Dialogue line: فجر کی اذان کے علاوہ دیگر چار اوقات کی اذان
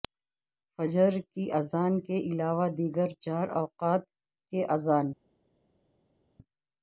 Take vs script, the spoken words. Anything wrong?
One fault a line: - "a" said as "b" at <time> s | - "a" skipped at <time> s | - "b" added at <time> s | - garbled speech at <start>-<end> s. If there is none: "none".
none